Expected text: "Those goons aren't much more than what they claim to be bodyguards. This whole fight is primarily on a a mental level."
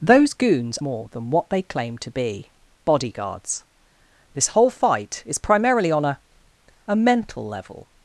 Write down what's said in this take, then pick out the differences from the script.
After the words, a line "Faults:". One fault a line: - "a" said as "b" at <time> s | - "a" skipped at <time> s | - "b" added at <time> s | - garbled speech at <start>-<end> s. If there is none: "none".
"Those goons more than what they claim to be bodyguards. This whole fight is primarily on a a mental level."
Faults:
- "aren't much" skipped at 0.8 s